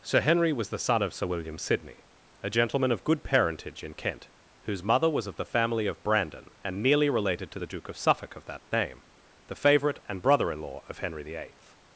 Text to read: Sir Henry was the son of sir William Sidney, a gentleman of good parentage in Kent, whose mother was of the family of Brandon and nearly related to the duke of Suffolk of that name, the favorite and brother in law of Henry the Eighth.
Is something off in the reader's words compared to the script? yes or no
no